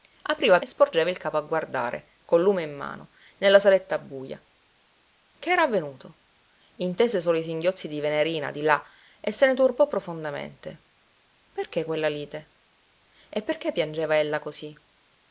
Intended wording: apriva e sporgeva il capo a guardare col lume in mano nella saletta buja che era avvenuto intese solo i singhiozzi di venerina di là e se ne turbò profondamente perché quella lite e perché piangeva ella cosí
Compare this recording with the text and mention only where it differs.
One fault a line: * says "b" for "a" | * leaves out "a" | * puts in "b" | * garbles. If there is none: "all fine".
all fine